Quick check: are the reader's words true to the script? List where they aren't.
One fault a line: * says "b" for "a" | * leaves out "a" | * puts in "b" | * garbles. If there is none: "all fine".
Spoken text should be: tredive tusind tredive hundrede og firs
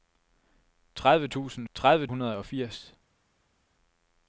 all fine